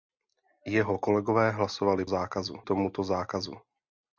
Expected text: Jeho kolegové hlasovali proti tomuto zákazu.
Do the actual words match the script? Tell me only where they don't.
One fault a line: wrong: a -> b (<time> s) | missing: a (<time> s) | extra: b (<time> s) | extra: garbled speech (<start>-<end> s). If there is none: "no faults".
wrong: proti -> zákazu (2.1 s)